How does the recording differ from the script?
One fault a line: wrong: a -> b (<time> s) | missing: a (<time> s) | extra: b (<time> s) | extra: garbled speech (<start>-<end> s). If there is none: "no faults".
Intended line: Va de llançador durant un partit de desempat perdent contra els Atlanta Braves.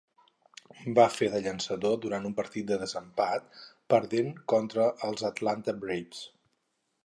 extra: fer (1.1 s)